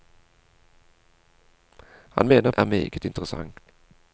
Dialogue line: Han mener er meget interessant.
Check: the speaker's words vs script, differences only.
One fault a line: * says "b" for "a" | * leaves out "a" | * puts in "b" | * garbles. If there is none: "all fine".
all fine